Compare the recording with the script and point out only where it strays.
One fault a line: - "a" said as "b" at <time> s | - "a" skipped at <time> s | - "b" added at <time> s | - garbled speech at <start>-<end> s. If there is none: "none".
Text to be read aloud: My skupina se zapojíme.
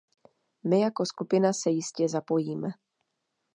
- "jako" added at 0.8 s
- "jistě" added at 1.7 s